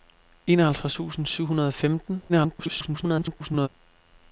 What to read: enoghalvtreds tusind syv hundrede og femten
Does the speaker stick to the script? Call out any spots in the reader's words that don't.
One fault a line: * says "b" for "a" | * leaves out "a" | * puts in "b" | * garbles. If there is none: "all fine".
* garbles